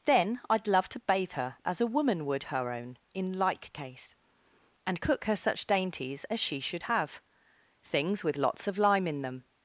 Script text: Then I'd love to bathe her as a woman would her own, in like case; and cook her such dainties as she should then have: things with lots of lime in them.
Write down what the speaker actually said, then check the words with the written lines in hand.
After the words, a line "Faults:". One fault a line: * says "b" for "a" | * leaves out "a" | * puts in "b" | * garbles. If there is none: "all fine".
Then I'd love to bathe her as a woman would her own, in like case; and cook her such dainties as she should have: things with lots of lime in them.
Faults:
* leaves out "then"